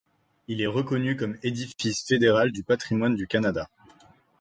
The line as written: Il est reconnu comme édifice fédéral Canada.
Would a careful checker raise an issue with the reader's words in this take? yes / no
yes